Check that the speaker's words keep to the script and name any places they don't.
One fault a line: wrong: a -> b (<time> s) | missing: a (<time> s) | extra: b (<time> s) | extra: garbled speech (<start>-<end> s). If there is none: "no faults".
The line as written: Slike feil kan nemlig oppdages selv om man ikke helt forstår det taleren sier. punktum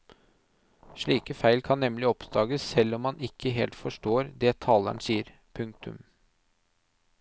no faults